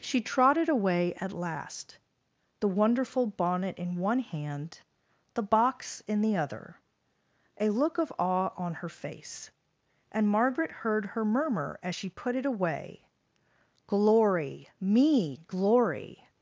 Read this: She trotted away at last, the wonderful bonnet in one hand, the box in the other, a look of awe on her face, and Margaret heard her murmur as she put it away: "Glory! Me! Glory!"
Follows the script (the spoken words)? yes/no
yes